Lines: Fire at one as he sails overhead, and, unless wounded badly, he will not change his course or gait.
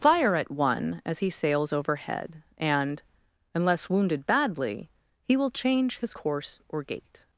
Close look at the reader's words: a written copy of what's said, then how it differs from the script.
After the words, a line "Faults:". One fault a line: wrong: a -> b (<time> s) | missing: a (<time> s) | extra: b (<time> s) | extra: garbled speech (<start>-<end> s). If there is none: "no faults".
Fire at one as he sails overhead, and, unless wounded badly, he will change his course or gait.
Faults:
missing: not (5.5 s)